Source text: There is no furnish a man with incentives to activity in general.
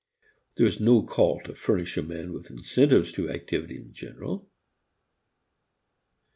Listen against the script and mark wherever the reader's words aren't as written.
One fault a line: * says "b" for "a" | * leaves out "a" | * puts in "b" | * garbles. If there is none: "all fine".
* puts in "call to"